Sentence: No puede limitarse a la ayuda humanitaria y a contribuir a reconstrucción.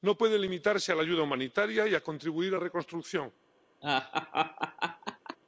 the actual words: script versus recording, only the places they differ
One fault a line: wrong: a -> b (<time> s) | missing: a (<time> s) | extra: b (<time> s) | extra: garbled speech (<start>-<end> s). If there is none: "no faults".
no faults